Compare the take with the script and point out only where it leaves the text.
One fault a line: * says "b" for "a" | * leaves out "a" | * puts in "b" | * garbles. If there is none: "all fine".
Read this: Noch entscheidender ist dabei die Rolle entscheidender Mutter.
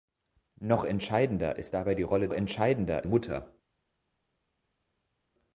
all fine